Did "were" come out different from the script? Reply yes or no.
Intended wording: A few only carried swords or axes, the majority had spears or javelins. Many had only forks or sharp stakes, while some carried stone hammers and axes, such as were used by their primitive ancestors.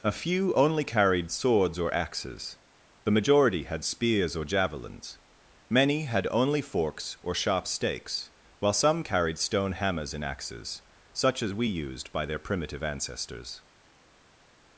yes